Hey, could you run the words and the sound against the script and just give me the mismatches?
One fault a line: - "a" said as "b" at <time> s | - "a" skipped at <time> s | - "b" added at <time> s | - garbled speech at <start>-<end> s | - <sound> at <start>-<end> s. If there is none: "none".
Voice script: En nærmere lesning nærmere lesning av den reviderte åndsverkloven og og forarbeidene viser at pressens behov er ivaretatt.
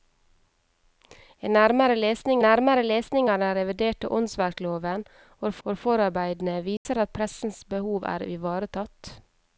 - dropout at 6.8-6.9 s